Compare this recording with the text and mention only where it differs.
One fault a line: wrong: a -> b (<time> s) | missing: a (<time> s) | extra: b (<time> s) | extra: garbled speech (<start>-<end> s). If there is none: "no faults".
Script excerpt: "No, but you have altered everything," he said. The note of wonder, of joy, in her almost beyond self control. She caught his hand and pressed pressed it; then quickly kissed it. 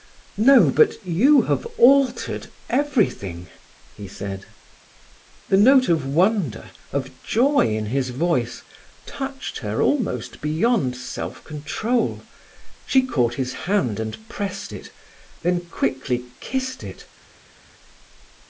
extra: his voice touched (7.8 s)
missing: pressed (14.7 s)